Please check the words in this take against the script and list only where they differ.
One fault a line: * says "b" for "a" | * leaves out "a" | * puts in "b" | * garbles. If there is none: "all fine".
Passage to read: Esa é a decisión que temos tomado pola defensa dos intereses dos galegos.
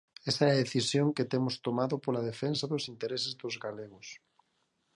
all fine